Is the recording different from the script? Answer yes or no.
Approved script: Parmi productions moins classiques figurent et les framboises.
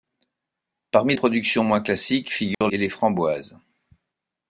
no